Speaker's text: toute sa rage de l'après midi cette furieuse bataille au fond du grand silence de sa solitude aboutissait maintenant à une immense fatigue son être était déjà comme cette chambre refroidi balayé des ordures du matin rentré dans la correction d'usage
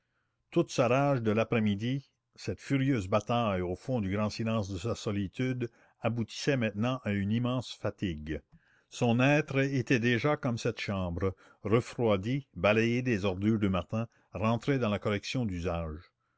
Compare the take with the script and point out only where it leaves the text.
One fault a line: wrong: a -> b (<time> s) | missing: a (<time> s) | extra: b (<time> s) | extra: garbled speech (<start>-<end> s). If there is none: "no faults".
no faults